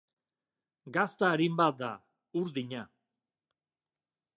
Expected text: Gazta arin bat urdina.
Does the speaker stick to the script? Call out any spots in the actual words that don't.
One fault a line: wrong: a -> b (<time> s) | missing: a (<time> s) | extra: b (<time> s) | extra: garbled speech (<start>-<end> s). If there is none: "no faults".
extra: da (1.8 s)